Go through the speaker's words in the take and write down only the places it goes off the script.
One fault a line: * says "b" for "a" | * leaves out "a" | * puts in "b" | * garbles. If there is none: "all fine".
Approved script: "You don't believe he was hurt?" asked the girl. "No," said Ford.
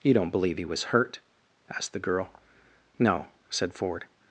all fine